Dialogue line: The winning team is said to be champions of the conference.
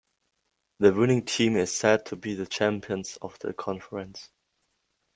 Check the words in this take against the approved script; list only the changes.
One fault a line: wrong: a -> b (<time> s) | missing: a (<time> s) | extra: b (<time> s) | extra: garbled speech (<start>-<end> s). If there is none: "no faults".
extra: the (2.3 s)